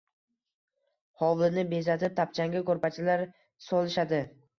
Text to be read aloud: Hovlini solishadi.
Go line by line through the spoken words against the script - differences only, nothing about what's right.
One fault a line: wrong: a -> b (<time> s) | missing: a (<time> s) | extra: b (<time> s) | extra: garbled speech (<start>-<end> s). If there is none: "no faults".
extra: bezatib tapchanga ko'rpachalar (1.8 s)